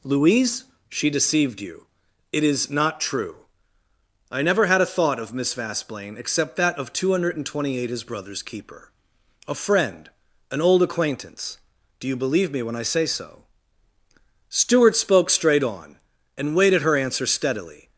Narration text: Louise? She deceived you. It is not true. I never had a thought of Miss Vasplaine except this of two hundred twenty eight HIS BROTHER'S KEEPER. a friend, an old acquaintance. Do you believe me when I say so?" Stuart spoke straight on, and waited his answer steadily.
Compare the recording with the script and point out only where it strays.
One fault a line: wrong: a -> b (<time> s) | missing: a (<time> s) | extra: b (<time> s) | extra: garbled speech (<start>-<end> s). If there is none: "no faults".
wrong: this -> that (6.5 s)
wrong: his -> her (16.8 s)